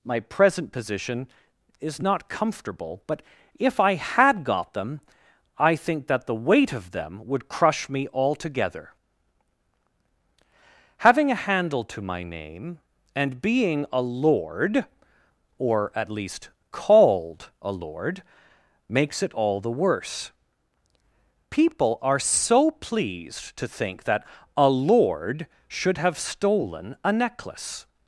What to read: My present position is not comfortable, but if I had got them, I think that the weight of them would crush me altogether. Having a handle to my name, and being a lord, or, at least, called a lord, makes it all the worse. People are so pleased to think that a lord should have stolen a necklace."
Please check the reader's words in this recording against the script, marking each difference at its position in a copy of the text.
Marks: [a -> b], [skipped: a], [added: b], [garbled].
My present position is not comfortable, but if I had got them, I think that the weight of them would crush me altogether. Having a handle to my name, and being a lord, or, at least, called a lord, makes it all the worse. People are so pleased to think that a lord should have stolen a necklace."